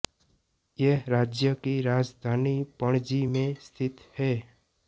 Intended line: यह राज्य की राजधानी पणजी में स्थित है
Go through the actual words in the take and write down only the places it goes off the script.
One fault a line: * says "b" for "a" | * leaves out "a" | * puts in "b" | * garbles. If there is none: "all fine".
all fine